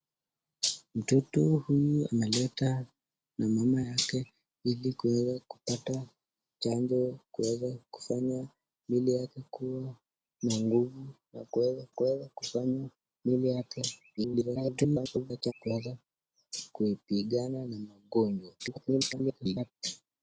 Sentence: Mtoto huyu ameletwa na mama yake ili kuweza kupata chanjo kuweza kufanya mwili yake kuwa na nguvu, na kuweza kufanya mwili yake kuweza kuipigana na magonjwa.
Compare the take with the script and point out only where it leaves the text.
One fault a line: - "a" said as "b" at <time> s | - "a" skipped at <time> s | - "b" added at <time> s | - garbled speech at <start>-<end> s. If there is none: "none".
- "kuweza" added at 11.9 s
- garbled speech at 14.2-15.5 s
- garbled speech at 18.6-19.7 s